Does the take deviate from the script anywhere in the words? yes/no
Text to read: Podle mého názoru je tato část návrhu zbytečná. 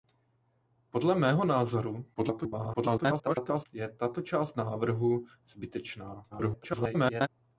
yes